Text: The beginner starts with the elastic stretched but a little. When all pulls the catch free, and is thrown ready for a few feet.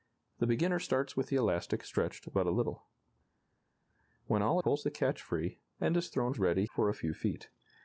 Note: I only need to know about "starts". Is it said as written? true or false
true